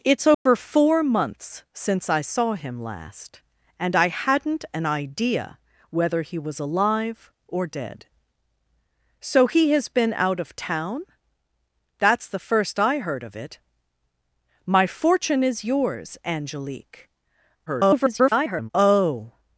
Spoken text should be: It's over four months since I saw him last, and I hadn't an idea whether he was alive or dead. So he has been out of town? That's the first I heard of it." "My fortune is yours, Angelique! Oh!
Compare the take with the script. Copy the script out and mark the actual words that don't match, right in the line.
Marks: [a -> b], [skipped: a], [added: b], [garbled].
It's over four months since I saw him last, and I hadn't an idea whether he was alive or dead. So he has been out of town? That's the first I heard of it." "My fortune is yours, Angelique! [garbled] Oh!